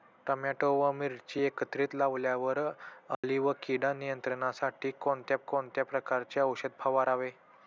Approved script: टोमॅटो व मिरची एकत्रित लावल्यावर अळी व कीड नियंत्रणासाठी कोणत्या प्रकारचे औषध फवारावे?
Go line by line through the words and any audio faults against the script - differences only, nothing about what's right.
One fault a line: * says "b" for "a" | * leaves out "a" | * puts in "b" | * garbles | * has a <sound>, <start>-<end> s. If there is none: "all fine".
* has a dropout, 3.1-3.2 s
* puts in "कोणत्या"